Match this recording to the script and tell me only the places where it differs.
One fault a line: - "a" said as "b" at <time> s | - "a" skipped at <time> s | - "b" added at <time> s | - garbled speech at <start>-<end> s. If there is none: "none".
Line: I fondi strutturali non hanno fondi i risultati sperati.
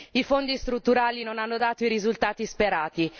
- "fondi" said as "dato" at 1.6 s